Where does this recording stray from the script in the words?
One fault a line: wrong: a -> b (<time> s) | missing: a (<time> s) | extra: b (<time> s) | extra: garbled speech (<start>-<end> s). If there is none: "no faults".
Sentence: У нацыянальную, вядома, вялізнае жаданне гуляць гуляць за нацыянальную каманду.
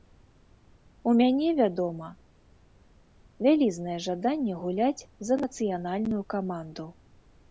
wrong: нацыянальную -> мяне (1.2 s)
missing: гуляць (5.1 s)